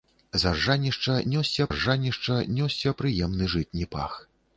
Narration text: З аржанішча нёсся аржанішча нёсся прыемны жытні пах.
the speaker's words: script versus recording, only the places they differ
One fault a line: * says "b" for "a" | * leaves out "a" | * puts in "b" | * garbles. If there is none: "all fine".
all fine